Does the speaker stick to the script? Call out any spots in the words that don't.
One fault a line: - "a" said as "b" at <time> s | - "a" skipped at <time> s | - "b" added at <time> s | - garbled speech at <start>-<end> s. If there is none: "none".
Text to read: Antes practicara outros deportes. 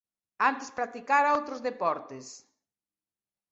none